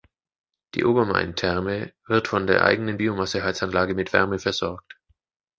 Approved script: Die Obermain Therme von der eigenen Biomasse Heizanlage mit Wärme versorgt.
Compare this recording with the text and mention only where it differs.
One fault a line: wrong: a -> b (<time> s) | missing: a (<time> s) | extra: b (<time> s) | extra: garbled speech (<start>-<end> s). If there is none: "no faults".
extra: wird (2.1 s)